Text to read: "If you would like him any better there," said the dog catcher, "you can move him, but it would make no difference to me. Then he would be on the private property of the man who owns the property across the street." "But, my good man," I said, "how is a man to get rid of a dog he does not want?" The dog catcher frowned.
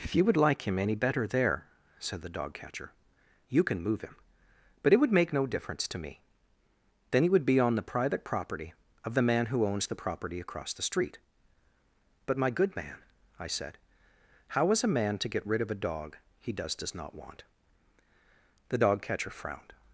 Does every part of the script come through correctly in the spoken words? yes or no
no